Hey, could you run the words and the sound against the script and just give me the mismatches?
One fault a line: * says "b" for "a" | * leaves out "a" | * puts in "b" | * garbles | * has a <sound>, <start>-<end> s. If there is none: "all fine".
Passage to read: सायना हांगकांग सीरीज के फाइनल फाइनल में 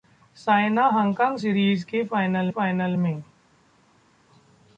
all fine